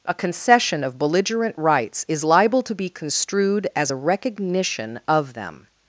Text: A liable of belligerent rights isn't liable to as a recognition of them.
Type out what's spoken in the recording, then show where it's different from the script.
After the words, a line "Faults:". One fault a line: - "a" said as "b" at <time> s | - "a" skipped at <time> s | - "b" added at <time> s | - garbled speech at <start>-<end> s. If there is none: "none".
A concession of belligerent rights is liable to be construed as a recognition of them.
Faults:
- "liable" said as "concession" at 0.1 s
- "isn't" said as "is" at 2.1 s
- "be construed" added at 2.8 s